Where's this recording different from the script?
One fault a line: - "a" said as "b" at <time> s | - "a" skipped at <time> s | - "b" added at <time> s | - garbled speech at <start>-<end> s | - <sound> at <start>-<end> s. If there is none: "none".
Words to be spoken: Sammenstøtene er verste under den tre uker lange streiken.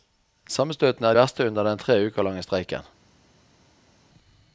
none